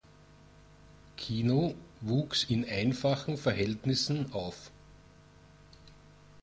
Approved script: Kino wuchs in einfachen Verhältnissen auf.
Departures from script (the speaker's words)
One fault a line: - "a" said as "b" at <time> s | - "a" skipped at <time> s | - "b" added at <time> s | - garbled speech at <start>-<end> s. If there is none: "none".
none